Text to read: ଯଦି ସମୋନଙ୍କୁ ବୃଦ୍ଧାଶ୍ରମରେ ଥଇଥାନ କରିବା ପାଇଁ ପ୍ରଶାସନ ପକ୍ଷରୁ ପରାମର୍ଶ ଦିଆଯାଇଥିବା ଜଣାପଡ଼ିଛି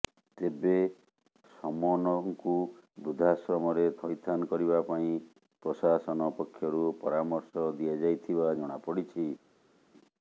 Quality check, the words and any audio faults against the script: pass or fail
fail